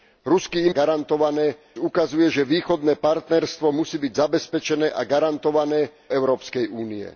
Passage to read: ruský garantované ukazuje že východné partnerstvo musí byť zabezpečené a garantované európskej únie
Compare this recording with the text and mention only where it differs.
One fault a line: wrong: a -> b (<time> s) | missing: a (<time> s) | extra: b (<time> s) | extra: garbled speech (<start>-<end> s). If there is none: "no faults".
no faults